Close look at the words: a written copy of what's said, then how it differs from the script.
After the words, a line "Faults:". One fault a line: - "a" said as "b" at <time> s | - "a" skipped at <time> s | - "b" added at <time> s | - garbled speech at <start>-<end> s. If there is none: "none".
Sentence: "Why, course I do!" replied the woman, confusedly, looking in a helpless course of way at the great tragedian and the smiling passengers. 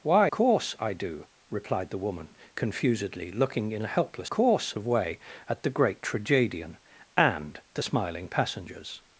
"Why, course I do!" replied the woman, confusedly, looking in a helpless course of way at the great tragedian and the smiling passengers.
Faults:
none